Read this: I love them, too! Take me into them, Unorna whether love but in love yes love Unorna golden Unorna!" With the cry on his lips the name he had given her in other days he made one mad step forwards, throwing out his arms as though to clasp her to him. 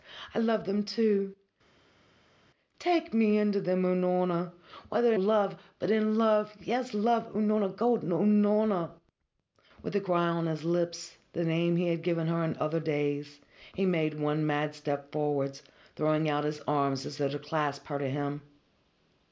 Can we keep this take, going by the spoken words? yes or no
yes